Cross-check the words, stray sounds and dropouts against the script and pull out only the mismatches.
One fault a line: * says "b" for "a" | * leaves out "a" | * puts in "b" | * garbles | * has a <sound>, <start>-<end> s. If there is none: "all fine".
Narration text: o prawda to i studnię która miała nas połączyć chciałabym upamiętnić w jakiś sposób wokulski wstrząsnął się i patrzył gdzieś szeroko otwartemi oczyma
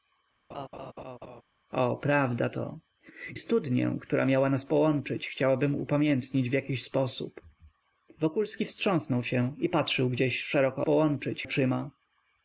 * has a laugh, 0.5-1.4 s
* leaves out "i"
* says "połączyć" for "otwartemi"